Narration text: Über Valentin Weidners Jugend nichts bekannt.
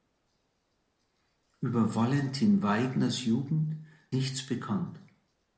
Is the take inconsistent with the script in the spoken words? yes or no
no